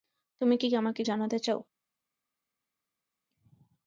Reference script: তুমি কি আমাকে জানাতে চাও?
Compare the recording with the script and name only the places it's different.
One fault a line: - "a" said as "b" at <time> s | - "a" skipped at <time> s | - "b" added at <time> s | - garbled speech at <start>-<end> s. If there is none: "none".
none